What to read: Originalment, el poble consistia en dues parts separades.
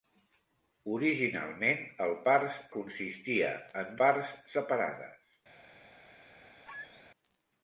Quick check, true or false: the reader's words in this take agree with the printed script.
false